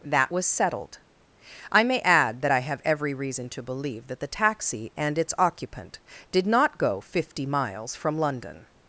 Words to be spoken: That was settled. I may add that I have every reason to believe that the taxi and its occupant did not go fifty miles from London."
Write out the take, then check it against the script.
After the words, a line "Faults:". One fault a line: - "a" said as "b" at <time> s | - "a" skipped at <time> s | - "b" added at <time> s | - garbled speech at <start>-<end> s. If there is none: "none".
That was settled. I may add that I have every reason to believe that the taxi and its occupant did not go fifty miles from London."
Faults:
none